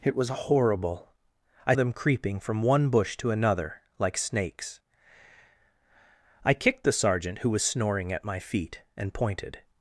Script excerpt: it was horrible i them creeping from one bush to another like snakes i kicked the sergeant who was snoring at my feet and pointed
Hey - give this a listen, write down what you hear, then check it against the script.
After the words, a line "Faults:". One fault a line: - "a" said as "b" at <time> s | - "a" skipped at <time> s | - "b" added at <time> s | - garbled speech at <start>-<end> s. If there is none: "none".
it was horrible i them creeping from one bush to another like snakes i kicked the sergeant who was snoring at my feet and pointed
Faults:
none